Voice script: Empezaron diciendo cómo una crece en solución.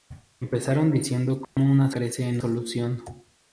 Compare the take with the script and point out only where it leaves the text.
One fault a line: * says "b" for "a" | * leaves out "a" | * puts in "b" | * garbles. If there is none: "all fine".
all fine